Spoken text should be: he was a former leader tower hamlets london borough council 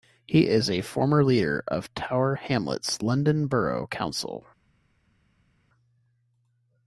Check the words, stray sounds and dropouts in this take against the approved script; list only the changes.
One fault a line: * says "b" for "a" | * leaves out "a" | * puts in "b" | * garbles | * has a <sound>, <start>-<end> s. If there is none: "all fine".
* says "is" for "was"
* puts in "of"